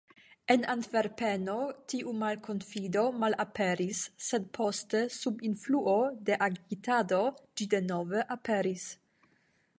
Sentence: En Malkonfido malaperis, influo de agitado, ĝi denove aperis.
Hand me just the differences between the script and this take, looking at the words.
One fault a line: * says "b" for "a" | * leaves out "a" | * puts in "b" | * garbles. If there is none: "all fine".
* puts in "Antverpeno tiu"
* puts in "sed poste sub"